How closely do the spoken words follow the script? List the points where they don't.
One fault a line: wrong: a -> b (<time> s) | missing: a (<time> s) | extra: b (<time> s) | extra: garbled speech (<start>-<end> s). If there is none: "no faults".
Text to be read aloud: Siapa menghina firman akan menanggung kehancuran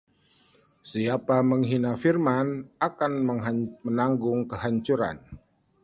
no faults